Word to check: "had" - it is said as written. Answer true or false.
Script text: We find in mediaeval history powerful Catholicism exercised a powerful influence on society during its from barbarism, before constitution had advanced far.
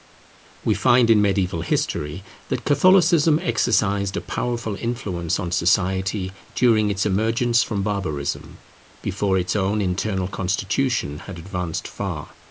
true